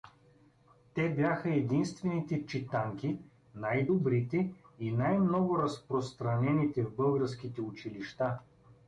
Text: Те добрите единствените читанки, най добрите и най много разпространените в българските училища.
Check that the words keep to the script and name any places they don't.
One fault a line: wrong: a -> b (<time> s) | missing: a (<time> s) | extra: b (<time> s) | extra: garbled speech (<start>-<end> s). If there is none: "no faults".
wrong: добрите -> бяха (1.1 s)